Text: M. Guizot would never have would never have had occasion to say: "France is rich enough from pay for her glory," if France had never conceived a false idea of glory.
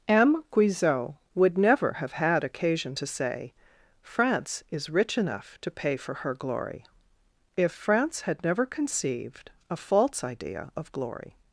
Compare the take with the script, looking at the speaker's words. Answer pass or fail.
fail